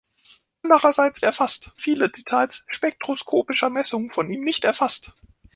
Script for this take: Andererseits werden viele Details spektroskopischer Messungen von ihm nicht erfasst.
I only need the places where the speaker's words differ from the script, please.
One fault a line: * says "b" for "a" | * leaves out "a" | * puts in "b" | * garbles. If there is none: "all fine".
* says "erfasst" for "werden"